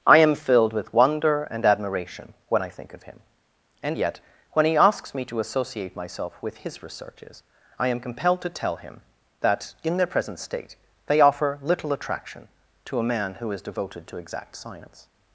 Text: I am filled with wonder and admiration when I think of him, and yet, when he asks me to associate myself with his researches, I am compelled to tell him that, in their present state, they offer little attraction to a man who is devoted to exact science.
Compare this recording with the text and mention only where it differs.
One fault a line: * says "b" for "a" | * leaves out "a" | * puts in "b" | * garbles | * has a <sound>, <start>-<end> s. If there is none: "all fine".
all fine